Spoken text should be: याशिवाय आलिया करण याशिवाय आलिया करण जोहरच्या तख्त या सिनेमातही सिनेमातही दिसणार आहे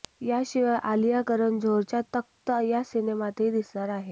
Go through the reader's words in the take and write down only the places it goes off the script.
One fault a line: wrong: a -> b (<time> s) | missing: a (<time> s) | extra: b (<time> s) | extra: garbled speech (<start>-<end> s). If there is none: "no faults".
missing: याशिवाय आलिया करण (1.6 s)
missing: सिनेमातही (3.5 s)